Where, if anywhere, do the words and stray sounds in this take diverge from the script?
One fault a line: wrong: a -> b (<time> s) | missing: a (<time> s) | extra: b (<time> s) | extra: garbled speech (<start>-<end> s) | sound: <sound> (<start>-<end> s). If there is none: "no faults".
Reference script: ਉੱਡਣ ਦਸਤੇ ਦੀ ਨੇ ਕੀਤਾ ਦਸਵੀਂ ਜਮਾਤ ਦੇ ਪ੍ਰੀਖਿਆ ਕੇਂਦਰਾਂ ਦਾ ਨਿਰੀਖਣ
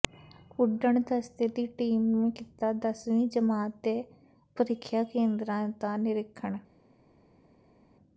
extra: ਟੀਮ (1.8 s)